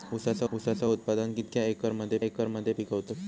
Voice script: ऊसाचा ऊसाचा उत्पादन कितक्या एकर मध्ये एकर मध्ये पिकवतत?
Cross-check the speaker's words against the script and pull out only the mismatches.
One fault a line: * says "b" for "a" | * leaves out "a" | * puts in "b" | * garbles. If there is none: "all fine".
all fine